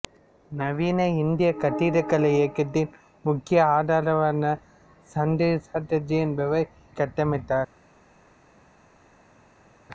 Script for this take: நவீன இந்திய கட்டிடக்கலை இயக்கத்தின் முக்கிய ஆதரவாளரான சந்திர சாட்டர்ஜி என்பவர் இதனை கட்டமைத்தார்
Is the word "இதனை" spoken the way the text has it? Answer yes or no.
no